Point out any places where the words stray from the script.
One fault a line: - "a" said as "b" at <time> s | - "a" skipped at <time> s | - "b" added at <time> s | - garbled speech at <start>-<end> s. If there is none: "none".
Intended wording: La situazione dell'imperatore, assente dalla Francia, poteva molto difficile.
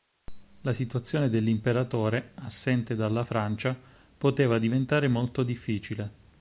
- "diventare" added at 4.6 s